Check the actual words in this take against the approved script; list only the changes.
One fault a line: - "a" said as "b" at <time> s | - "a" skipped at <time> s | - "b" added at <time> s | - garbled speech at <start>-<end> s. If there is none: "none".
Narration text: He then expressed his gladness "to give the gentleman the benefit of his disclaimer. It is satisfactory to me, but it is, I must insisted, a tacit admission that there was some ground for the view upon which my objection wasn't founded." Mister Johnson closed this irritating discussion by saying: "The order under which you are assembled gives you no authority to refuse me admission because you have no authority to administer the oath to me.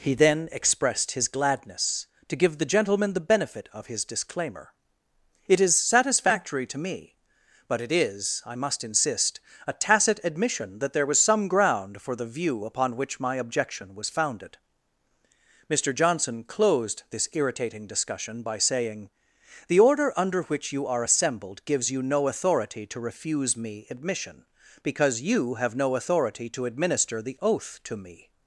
- "insisted" said as "insist" at 8.8 s
- "wasn't" said as "was" at 13.9 s